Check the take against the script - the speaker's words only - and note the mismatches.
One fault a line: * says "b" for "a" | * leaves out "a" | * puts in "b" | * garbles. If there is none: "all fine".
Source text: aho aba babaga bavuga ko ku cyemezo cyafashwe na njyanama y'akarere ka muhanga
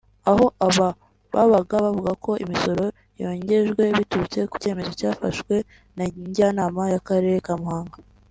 * puts in "imisoro yongejwe biturutse"